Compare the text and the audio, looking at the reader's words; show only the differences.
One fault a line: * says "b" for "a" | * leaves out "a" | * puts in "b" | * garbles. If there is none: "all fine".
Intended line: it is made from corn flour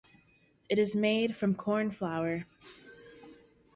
all fine